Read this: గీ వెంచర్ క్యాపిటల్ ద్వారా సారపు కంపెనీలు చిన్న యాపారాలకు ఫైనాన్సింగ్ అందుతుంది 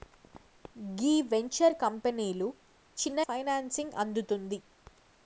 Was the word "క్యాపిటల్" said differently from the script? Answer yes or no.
yes